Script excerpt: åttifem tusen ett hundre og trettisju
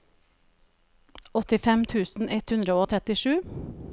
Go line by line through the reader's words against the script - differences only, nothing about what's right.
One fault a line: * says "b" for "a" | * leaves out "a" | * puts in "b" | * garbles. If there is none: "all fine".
all fine